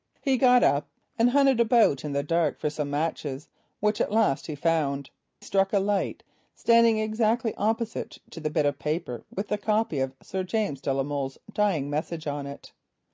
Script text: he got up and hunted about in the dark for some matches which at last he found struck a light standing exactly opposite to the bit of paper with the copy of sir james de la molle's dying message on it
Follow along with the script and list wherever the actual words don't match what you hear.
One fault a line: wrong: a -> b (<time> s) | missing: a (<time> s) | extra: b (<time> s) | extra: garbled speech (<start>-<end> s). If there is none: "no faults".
no faults